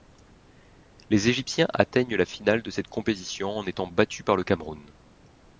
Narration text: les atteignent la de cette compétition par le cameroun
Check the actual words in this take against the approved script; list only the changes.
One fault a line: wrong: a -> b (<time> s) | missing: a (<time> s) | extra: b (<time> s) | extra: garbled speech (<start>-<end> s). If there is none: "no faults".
extra: égyptiens (1.3 s)
extra: finale (2.2 s)
extra: en étant battus (3.5 s)